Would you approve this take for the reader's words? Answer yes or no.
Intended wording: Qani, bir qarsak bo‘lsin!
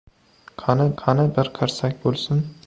no